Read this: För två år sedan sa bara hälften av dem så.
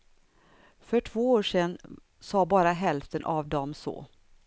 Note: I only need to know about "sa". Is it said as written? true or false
true